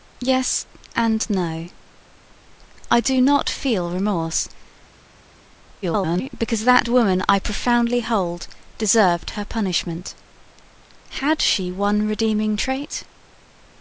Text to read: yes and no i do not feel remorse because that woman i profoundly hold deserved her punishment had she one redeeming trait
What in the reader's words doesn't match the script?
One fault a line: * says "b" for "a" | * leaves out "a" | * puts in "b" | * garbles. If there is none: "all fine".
* garbles